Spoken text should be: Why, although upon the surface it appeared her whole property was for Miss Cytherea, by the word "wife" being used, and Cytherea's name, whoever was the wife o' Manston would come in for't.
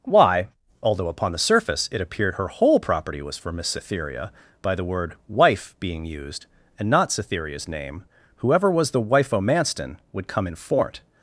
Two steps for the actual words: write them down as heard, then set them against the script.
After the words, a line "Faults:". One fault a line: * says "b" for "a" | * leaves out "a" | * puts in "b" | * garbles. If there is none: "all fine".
Why, although upon the surface it appeared her whole property was for Miss Cytherea, by the word "wife" being used, and not Cytherea's name, whoever was the wife o' Manston would come in for't.
Faults:
* puts in "not"